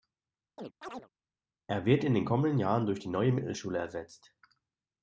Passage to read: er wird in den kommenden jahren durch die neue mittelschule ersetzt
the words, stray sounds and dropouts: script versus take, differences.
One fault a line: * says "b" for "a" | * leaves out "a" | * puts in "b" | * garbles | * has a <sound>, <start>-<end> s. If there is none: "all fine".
* has a chirp, 0.6-1.1 s